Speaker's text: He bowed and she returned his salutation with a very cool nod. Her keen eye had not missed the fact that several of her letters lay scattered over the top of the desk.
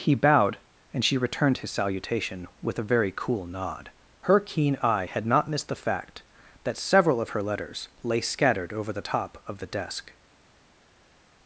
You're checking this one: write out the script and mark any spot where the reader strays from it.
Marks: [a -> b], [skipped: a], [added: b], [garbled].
He bowed and she returned his salutation with a very cool nod. Her keen eye had not missed the fact that several of her letters lay scattered over the top of the desk.